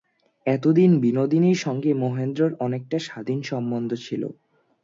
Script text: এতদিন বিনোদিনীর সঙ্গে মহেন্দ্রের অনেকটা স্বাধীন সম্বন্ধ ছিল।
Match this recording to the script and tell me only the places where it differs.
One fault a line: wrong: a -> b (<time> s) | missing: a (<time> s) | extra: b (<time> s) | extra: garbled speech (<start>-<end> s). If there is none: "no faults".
no faults